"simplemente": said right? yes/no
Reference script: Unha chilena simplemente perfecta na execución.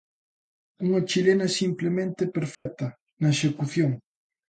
yes